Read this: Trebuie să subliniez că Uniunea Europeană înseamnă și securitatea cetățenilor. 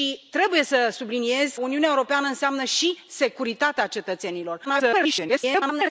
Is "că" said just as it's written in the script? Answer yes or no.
no